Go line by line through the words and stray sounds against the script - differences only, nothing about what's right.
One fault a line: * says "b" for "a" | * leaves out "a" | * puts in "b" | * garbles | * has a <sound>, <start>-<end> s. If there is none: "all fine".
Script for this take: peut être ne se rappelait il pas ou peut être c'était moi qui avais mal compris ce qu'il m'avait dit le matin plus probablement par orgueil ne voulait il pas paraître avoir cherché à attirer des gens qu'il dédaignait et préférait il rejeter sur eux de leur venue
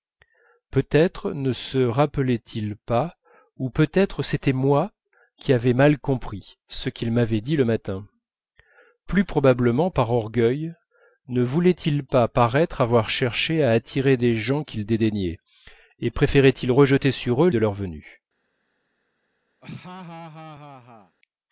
* has a laugh, 19.6-21.2 s